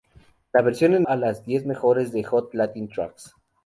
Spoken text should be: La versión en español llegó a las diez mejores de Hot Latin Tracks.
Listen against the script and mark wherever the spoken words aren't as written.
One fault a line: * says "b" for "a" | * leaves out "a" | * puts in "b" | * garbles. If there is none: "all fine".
* leaves out "español llegó"